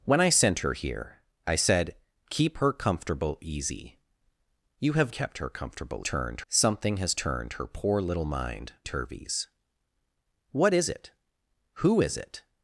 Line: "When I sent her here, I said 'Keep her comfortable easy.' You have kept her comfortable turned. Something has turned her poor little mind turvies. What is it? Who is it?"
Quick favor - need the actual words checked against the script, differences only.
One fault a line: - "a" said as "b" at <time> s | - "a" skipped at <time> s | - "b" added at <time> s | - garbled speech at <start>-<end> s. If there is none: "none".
none